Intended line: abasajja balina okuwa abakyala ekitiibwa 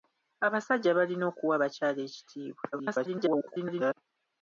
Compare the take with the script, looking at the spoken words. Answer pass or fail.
fail